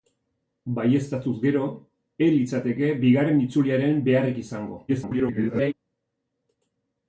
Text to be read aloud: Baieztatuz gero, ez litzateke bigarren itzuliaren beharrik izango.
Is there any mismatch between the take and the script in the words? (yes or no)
yes